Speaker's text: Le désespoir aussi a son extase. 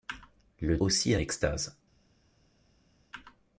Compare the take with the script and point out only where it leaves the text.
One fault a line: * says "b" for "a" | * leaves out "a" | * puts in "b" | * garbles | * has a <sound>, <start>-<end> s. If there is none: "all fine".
* leaves out "désespoir"
* leaves out "son"